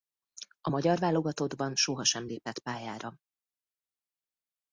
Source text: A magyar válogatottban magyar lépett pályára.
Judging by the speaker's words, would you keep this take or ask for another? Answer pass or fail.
fail